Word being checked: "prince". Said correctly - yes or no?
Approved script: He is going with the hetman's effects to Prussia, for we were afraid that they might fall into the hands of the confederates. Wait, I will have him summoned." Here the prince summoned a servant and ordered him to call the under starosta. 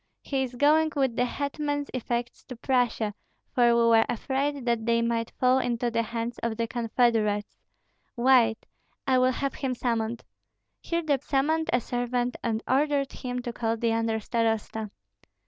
no